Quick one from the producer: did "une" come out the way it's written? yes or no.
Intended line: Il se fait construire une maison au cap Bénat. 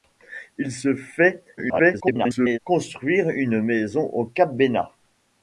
yes